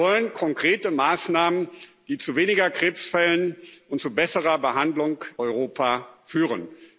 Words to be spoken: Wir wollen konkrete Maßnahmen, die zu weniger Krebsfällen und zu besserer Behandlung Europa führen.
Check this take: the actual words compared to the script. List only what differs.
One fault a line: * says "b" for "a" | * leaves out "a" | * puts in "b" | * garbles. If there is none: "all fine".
all fine